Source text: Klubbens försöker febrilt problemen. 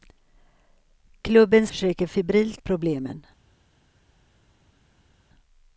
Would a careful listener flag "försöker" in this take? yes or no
no